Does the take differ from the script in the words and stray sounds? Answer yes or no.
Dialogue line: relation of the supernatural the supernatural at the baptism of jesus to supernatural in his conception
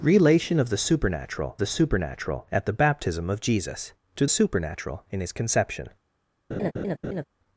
yes